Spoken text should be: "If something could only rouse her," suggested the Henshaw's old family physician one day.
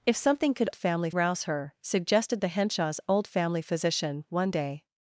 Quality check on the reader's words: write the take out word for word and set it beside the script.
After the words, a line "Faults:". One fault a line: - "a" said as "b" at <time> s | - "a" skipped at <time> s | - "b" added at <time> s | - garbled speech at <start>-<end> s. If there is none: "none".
"If something could family rouse her," suggested the Henshaw's old family physician one day.
Faults:
- "only" said as "family" at 0.7 s